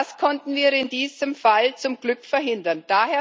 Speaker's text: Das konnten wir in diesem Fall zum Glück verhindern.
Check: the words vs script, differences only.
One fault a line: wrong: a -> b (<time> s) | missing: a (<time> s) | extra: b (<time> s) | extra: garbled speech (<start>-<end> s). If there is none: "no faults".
no faults